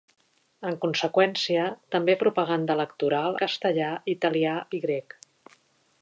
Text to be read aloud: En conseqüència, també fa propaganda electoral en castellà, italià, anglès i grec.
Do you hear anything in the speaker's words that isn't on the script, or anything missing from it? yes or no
yes